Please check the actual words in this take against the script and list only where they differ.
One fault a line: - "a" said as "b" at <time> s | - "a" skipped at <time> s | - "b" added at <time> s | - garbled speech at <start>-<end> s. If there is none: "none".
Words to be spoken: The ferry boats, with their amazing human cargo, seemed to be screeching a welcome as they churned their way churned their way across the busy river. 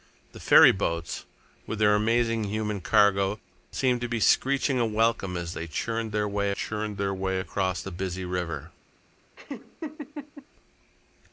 none